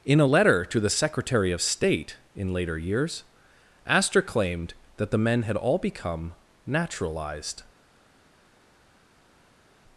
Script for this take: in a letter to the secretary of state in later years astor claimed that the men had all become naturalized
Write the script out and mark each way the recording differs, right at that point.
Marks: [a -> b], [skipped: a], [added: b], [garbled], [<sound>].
in a letter to the secretary of state in later years astor claimed that the men had all become naturalized